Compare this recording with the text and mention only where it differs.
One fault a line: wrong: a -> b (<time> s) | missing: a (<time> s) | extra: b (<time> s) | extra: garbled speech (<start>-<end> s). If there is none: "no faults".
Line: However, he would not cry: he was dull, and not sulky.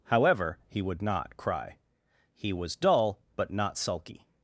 wrong: and -> but (3.4 s)